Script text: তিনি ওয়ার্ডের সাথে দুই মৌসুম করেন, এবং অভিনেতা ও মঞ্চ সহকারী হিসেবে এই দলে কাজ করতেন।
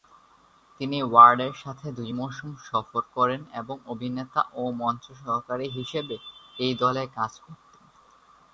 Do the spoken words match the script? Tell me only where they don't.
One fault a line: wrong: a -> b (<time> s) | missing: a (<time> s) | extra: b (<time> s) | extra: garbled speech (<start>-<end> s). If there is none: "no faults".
extra: সফর (2.7 s)